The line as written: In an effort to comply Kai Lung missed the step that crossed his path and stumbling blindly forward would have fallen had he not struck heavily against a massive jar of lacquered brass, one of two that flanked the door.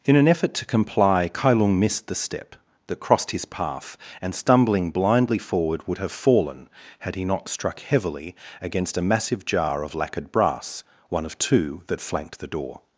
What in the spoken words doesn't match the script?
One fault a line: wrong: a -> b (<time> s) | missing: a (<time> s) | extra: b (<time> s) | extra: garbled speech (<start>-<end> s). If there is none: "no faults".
no faults